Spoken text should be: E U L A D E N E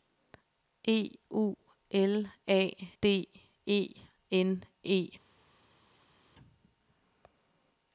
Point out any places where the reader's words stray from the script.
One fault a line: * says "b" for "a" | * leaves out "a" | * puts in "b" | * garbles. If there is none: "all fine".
all fine